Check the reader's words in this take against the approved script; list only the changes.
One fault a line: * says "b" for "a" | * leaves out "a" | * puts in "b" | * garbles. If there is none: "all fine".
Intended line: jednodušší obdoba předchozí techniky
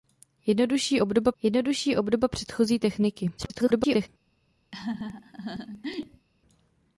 * puts in "jednodušší obdoba"
* garbles